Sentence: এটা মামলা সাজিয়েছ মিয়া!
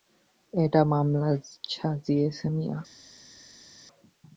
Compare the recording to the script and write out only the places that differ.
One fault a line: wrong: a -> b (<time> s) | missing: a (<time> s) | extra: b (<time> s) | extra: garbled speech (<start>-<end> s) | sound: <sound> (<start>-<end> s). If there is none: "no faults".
no faults